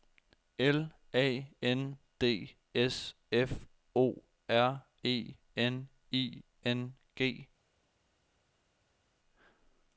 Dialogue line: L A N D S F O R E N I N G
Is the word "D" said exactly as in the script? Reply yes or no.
yes